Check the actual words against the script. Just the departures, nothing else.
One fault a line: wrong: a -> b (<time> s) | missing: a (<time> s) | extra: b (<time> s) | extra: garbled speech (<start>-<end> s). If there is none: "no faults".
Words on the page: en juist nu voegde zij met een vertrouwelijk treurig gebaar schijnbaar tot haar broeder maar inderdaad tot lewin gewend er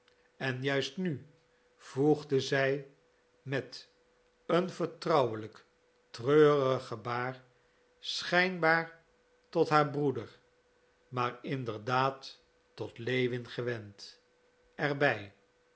no faults